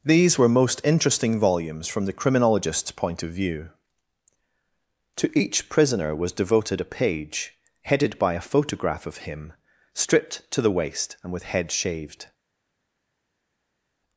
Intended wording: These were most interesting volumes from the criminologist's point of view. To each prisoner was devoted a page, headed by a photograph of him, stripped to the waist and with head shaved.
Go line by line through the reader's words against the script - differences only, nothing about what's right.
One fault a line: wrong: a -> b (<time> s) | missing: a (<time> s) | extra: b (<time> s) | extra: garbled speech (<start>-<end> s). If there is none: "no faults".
no faults